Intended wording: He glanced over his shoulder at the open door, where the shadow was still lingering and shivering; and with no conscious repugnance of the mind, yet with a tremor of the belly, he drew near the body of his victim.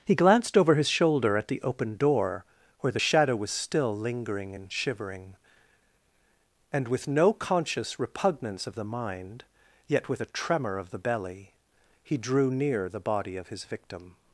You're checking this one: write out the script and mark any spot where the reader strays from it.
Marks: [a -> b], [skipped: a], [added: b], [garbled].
He glanced over his shoulder at the open door, where the shadow was still lingering and shivering; and with no conscious repugnance of the mind, yet with a tremor of the belly, he drew near the body of his victim.